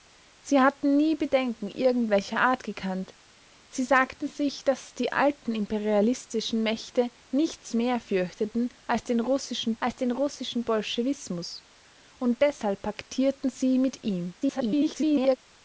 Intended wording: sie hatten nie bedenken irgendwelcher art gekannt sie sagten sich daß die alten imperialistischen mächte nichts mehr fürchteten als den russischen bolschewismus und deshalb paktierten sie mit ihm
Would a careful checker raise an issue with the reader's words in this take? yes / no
yes